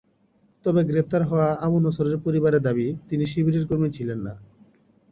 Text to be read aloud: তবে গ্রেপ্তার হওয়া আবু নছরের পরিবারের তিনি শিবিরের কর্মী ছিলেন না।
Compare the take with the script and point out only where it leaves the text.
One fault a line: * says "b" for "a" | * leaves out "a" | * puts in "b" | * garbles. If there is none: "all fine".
* puts in "দাবি"